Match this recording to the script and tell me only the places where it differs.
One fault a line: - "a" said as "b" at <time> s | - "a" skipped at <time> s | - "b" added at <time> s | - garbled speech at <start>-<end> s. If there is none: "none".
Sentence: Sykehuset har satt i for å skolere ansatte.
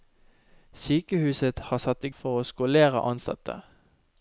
none